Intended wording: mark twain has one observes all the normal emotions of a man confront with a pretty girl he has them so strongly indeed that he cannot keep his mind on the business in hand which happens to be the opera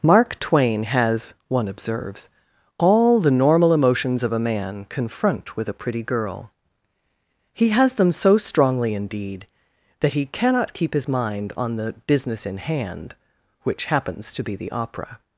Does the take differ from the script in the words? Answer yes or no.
no